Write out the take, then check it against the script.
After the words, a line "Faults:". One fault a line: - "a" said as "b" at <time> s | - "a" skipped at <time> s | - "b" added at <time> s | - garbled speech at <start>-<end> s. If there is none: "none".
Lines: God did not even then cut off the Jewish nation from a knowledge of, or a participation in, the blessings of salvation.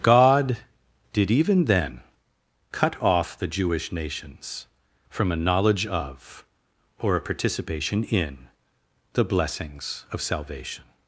God did even then cut off the Jewish nations from a knowledge of, or a participation in, the blessings of salvation.
Faults:
- "not" skipped at 1.3 s
- "nation" said as "nations" at 3.9 s